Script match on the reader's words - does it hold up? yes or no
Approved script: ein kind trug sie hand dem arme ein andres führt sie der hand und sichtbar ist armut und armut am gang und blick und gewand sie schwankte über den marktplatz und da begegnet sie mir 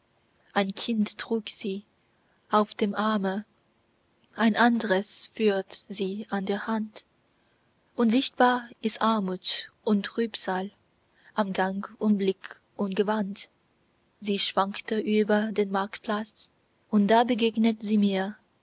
no